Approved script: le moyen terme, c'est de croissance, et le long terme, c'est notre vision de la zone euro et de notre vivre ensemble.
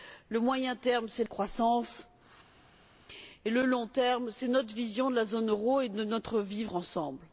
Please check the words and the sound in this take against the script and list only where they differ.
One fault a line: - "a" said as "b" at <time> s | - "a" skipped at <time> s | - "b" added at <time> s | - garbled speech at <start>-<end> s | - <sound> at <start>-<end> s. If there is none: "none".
none